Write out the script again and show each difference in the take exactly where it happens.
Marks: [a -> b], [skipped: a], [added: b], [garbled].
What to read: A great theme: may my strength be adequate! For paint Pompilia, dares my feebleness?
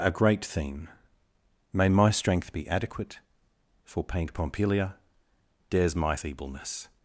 A great theme: may my strength be adequate! For paint Pompilia, dares my feebleness?